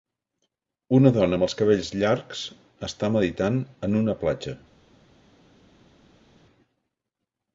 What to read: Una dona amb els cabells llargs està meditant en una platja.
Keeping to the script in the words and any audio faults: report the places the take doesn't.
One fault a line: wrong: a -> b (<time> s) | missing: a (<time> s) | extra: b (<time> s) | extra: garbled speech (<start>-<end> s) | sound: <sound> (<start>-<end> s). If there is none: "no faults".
no faults